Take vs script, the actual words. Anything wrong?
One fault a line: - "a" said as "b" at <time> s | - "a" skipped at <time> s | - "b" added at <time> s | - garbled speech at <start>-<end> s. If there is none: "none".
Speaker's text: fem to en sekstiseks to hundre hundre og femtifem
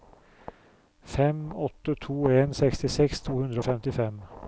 - "åtte" added at 1.6 s
- "hundre" skipped at 3.6 s